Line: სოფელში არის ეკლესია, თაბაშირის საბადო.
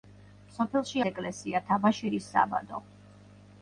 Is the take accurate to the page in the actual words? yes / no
no